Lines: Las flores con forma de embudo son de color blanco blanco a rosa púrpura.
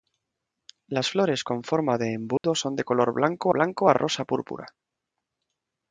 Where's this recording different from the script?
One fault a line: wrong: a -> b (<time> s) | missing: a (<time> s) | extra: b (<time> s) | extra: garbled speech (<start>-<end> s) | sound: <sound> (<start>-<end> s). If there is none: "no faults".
sound: dropout (2.4-2.4 s)